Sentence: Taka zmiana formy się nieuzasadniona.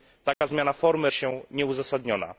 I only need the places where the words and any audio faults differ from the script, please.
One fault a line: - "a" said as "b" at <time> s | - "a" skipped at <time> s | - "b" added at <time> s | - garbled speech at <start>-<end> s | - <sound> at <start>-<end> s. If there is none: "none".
- dropout at 0.3-0.4 s